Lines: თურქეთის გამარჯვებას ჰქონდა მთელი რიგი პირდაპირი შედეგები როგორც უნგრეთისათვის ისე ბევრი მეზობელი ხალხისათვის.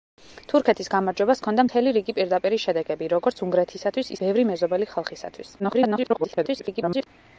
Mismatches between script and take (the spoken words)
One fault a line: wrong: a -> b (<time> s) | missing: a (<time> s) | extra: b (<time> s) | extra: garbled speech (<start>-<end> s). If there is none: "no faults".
missing: ისე (4.1 s)
extra: garbled speech (5.6-7.1 s)